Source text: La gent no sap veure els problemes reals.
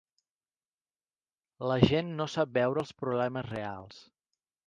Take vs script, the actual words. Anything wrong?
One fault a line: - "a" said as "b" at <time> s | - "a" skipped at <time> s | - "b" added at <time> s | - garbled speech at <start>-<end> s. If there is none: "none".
none